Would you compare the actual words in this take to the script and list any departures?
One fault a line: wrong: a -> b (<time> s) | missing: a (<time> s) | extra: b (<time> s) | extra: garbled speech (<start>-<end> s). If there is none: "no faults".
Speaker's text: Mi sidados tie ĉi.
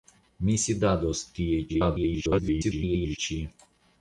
extra: garbled speech (1.7-3.2 s)